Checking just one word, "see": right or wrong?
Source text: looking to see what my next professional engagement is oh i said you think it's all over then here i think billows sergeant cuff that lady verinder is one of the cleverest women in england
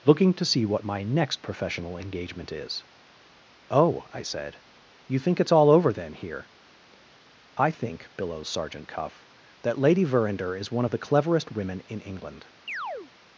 right